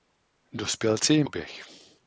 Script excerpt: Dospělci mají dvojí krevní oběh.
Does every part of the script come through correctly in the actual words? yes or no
no